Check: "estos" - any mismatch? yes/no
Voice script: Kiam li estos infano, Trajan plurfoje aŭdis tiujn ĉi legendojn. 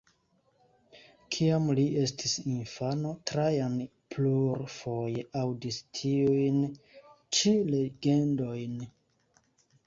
yes